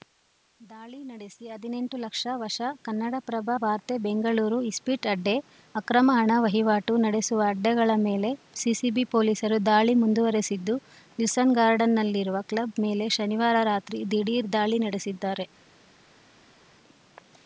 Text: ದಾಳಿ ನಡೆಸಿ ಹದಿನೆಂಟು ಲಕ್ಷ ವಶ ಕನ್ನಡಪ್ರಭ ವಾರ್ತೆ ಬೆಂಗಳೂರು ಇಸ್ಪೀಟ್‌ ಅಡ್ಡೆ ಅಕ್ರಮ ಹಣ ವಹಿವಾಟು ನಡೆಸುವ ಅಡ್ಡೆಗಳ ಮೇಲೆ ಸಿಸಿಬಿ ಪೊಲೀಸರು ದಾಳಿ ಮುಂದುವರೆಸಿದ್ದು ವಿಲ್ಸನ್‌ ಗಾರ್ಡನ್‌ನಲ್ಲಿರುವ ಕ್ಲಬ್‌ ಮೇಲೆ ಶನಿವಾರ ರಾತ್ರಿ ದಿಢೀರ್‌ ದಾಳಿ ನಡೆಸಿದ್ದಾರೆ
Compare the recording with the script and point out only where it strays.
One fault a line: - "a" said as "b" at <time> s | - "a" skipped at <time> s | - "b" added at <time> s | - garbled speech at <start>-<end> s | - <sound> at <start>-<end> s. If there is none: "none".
none